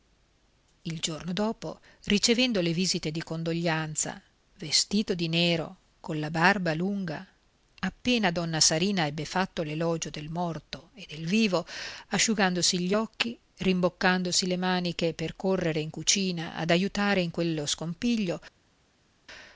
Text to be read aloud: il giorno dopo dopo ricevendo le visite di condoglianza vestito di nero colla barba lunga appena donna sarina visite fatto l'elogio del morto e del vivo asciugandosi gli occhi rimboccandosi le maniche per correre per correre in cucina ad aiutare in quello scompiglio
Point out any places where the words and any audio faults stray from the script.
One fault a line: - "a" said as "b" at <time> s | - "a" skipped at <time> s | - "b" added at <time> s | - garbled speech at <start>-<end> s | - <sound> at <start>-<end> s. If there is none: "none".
- "dopo" skipped at 1.8 s
- "visite" said as "ebbe" at 9.1 s
- "per correre" skipped at 15.8 s